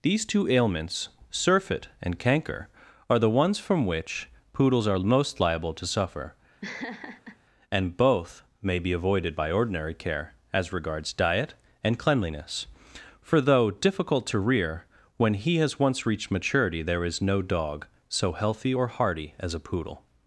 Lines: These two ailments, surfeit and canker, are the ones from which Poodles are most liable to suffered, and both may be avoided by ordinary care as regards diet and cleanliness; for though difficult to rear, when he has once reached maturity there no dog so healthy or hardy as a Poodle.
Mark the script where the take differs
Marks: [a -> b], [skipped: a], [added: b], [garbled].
These two ailments, surfeit and canker, are the ones from which Poodles are most liable to [suffered, -> suffer] and both may be avoided by ordinary care as regards diet and cleanliness; for though difficult to rear, when he has once reached maturity there [added: is] no dog so healthy or hardy as a Poodle.